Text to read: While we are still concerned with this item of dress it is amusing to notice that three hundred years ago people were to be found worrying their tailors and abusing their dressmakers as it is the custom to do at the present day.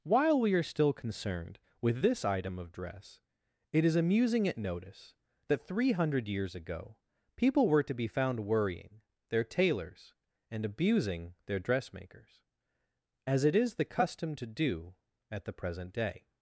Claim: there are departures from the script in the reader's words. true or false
true